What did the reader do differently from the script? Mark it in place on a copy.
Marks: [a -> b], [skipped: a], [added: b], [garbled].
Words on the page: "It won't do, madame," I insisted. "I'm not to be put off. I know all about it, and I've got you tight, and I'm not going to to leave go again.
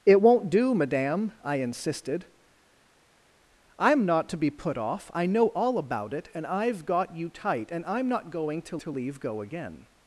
"It won't do, madame," I insisted. "I'm not to be put off. I know all about it, and I've got you tight, and I'm not going to to leave go again.